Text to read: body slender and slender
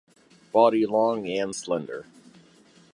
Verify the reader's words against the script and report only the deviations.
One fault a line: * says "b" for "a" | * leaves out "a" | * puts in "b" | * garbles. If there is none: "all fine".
* says "long" for "slender"